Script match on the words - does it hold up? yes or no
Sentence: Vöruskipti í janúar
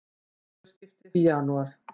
yes